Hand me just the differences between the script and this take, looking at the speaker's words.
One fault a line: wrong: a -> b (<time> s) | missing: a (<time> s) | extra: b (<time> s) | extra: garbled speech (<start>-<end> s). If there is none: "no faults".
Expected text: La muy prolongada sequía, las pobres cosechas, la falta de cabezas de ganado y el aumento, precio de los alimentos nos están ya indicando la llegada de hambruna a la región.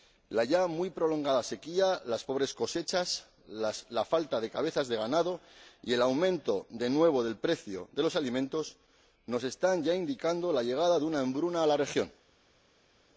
extra: ya (0.5 s)
extra: de nuevo del (6.7 s)
extra: una (11.1 s)